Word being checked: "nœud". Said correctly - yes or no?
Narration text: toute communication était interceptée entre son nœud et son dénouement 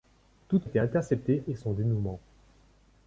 no